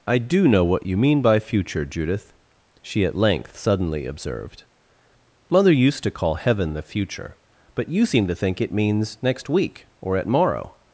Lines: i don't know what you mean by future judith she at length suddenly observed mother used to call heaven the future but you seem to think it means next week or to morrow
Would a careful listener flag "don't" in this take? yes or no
yes